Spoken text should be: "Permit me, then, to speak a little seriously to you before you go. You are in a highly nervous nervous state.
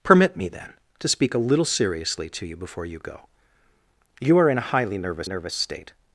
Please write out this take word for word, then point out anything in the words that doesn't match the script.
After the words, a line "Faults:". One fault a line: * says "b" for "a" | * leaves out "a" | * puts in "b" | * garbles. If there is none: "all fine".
"Permit me, then, to speak a little seriously to you before you go. You are in a highly nervous nervous state.
Faults:
all fine